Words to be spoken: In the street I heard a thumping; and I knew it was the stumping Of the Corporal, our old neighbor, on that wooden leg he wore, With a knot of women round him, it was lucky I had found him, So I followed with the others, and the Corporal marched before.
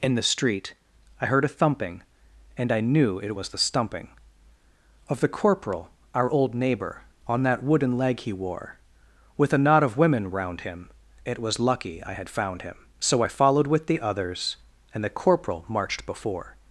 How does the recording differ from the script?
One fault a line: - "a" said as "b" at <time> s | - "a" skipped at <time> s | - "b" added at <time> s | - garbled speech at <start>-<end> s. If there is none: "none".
none